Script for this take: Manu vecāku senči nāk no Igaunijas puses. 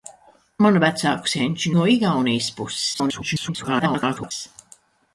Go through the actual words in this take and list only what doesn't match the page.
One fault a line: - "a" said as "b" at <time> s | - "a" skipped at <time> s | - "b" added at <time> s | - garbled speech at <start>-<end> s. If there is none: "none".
- "nāk" skipped at 1.7 s
- garbled speech at 2.9-4.3 s